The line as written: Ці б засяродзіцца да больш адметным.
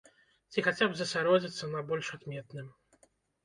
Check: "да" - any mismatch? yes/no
yes